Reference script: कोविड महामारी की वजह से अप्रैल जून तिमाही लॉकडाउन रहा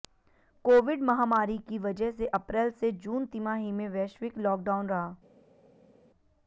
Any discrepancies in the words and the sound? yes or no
yes